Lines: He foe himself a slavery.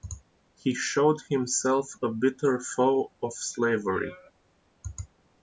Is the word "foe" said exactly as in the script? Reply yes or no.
no